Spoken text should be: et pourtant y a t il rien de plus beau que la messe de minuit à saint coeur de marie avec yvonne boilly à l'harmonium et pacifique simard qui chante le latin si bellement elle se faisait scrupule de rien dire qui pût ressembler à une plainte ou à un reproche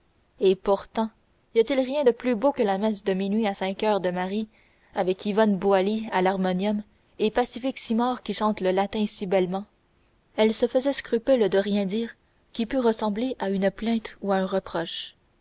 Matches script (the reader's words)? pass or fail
pass